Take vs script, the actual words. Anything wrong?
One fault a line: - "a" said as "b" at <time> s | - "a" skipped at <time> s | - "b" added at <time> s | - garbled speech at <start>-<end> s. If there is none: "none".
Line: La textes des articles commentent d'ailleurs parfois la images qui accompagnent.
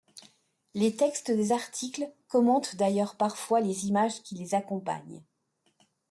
- "La" said as "Les" at 0.7 s
- "la" said as "les" at 3.6 s
- "les" added at 4.4 s